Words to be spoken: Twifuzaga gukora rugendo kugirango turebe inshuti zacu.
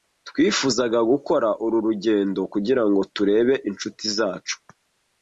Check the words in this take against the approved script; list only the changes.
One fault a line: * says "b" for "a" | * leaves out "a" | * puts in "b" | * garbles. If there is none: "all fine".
* puts in "uru"